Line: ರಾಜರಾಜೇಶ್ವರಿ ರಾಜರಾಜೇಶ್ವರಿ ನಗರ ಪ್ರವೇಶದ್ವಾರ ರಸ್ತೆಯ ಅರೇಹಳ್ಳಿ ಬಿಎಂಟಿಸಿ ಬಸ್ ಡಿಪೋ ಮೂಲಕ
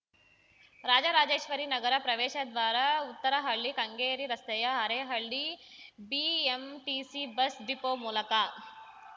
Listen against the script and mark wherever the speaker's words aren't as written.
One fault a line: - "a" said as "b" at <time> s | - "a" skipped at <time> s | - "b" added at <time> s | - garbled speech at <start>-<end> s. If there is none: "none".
- "ರಾಜರಾಜೇಶ್ವರಿ" skipped at 1.6 s
- "ಉತ್ತರಹಳ್ಳಿ ಕೆಂಗೇರಿ" added at 3.1 s